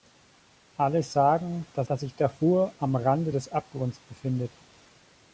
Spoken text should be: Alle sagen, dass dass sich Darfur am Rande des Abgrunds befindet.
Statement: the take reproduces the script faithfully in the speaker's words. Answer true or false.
true